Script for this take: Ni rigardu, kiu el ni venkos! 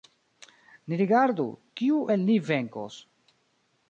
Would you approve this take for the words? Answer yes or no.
yes